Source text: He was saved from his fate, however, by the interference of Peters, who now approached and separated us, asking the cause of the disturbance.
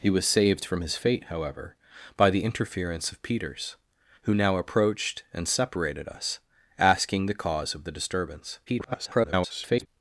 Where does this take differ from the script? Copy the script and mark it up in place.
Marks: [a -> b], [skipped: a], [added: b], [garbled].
He was saved from his fate, however, by the interference of Peters, who now approached and separated us, asking the cause of the disturbance. [garbled]